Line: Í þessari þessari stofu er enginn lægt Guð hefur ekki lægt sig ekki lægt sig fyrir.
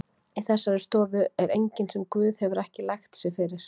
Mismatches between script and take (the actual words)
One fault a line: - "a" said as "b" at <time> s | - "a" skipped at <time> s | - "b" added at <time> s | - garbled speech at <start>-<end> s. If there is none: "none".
- "þessari" skipped at 0.8 s
- "lægt" said as "sem" at 2.0 s
- "ekki lægt sig" skipped at 3.4 s